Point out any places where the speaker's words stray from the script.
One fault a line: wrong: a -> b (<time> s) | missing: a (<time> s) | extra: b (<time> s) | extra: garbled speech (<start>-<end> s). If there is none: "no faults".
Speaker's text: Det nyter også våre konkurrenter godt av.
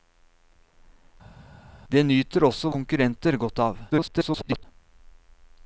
missing: våre (2.7 s)
extra: garbled speech (3.9-4.6 s)